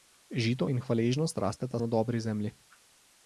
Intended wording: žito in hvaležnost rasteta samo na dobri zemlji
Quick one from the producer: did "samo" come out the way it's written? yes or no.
no